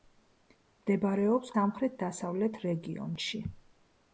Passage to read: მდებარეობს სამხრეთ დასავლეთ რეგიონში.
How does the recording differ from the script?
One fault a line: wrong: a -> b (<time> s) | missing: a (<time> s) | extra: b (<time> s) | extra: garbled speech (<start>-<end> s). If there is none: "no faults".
no faults